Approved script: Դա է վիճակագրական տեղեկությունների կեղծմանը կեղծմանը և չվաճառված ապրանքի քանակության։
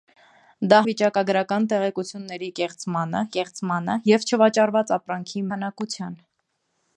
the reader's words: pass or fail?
pass